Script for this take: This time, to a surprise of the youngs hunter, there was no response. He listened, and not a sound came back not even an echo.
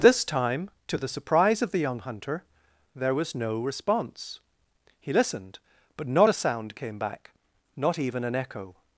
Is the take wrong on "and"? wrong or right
wrong